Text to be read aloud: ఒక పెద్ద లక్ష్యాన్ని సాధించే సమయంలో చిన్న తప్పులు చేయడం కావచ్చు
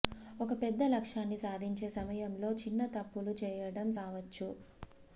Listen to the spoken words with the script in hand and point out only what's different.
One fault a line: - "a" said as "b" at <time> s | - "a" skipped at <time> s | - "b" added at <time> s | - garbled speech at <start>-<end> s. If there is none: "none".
none